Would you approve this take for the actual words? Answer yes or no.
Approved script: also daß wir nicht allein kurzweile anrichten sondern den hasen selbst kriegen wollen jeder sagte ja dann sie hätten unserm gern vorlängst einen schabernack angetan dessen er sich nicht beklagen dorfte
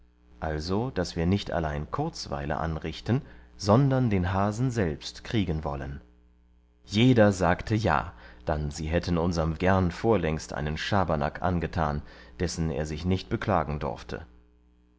yes